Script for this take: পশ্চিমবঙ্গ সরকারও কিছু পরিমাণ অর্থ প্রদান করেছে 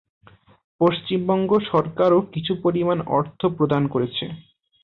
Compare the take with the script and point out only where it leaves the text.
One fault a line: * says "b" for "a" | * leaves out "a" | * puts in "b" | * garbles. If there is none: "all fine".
all fine